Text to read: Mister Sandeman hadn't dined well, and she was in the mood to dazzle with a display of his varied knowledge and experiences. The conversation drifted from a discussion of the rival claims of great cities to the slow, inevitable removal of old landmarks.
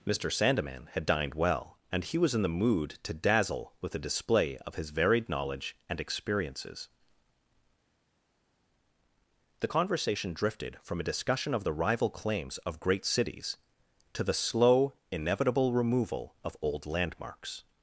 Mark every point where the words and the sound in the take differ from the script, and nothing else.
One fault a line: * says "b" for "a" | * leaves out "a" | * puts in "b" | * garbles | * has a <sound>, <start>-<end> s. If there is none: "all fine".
* says "had" for "hadn't"
* says "he" for "she"